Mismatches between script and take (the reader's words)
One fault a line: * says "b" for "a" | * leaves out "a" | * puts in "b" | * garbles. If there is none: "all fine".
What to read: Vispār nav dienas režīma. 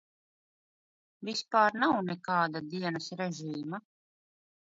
* puts in "nekāda"